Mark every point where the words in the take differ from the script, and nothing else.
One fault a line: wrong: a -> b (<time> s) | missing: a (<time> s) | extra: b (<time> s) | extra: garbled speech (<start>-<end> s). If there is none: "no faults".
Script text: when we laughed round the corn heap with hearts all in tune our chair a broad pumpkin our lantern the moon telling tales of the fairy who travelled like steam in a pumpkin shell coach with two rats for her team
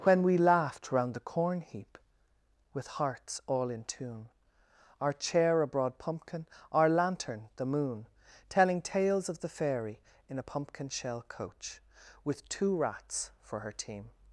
missing: who travelled like steam (10.0 s)